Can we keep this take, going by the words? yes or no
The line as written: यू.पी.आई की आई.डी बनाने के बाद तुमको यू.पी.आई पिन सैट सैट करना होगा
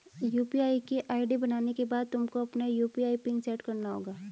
no